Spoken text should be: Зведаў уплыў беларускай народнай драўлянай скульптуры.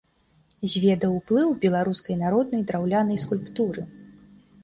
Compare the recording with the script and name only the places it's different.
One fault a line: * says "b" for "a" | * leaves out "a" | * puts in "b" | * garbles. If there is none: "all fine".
all fine